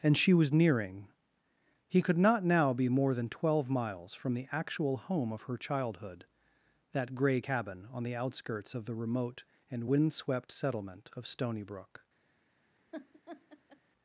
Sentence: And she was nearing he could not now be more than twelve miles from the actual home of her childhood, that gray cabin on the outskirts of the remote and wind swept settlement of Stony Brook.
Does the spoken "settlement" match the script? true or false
true